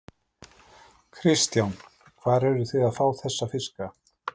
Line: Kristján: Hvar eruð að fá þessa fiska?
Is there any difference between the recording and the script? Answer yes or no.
yes